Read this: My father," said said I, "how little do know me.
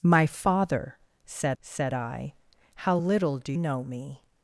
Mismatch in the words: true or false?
false